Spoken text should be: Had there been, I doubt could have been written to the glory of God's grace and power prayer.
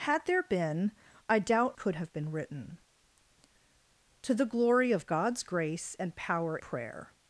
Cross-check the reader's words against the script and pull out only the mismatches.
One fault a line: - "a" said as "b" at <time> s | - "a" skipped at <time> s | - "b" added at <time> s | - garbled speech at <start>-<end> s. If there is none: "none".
none